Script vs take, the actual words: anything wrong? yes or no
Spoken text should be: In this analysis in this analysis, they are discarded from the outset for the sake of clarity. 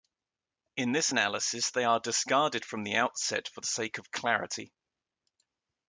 yes